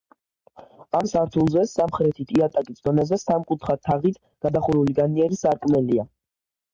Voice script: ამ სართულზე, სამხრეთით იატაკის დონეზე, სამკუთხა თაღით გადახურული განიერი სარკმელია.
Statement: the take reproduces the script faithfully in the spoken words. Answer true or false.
true